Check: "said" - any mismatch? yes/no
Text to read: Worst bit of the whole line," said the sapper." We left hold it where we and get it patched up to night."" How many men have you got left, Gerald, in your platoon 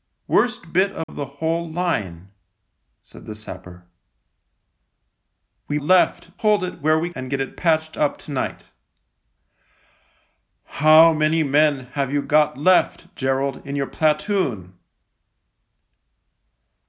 no